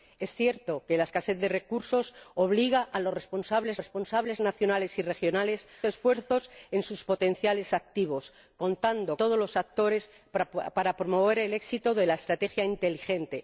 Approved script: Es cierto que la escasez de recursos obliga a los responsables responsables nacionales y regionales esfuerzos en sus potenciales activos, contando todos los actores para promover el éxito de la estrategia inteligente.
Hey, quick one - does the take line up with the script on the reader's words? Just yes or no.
yes